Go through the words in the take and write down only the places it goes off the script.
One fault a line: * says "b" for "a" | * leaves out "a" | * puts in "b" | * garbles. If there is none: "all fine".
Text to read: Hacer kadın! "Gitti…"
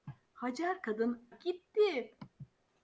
all fine